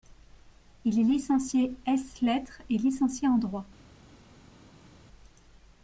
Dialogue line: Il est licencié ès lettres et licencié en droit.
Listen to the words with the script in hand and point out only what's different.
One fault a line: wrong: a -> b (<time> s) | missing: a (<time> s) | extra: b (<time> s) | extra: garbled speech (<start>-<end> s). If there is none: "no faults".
no faults